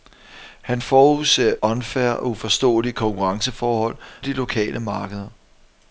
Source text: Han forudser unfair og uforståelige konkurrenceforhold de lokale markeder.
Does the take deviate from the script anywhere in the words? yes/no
no